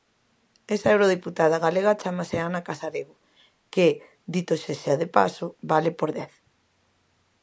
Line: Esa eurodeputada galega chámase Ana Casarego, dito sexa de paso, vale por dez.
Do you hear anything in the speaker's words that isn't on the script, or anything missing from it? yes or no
yes